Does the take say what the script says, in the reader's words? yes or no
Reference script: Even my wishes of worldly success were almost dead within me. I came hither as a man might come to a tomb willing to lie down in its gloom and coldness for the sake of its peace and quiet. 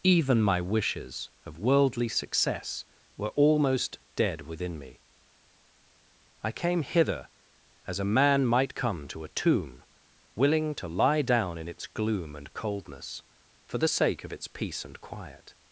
yes